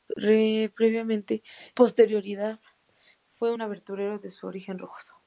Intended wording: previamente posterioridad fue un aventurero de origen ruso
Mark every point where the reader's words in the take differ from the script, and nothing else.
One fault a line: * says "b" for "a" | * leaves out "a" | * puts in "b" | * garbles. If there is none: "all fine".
all fine